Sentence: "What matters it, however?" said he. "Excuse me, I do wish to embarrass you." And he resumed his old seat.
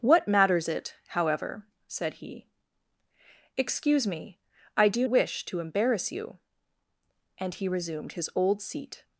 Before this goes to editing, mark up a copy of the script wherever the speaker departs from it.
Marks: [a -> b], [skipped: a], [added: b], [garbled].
"What matters it, however?" said he. "Excuse me, I do wish to embarrass you." And he resumed his old seat.